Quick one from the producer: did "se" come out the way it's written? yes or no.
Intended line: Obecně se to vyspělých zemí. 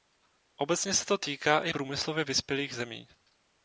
yes